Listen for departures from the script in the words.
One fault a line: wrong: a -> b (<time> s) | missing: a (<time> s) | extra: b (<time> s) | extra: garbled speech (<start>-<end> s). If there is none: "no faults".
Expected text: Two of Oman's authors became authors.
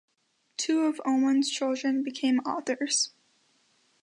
wrong: authors -> children (1.5 s)